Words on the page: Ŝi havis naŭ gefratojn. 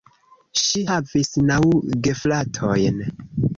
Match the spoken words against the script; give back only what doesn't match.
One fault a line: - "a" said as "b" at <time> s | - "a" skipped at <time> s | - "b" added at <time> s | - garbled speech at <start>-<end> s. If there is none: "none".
none